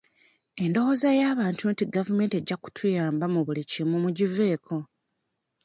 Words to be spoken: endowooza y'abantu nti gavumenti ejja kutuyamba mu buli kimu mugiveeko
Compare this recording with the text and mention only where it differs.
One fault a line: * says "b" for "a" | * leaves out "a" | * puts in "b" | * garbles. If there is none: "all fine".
all fine